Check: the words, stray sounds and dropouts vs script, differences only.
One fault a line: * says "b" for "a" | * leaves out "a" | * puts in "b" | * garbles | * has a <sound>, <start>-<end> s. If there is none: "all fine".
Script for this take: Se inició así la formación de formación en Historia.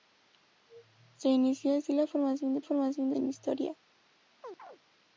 * has a chirp, 4.4-4.8 s